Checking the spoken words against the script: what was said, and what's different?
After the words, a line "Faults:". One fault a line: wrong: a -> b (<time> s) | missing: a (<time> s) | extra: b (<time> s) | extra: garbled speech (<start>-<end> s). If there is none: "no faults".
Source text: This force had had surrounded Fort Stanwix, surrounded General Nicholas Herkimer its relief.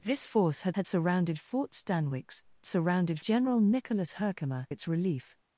This force had had surrounded Fort Stanwix, surrounded General Nicholas Herkimer its relief.
Faults:
no faults